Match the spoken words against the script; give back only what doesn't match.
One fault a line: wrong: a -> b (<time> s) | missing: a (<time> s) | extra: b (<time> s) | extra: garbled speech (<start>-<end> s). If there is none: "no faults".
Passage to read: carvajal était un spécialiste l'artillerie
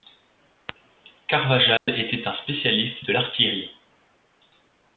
extra: de (3.0 s)